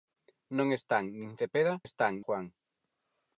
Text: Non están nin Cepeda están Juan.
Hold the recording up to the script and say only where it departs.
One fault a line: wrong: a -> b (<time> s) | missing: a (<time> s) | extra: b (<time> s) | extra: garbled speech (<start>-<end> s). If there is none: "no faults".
no faults